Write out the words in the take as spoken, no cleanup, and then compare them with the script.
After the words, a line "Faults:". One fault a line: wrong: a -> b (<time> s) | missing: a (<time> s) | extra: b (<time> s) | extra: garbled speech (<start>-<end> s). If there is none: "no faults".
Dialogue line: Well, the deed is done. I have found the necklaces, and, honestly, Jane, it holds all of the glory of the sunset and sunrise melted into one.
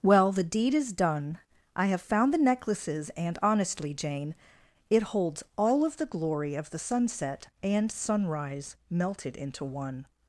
Well, the deed is done. I have found the necklaces, and, honestly, Jane, it holds all of the glory of the sunset and sunrise melted into one.
Faults:
no faults